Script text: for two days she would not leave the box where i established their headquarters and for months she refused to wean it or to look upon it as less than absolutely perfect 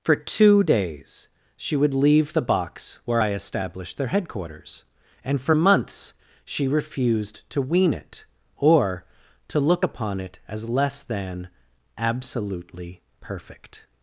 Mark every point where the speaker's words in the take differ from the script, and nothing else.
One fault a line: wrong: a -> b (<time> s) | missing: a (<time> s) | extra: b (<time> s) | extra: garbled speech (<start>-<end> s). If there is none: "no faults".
missing: not (1.9 s)